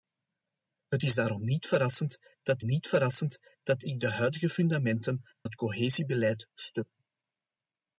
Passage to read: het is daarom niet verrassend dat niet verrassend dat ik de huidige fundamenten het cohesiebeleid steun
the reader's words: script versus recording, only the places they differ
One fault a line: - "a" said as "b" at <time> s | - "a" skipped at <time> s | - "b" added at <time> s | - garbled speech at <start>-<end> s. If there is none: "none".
none